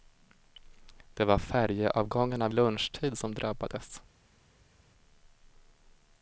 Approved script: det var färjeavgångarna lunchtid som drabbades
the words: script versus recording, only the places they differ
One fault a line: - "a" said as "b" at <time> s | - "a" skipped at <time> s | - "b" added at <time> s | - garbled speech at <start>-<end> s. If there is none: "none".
none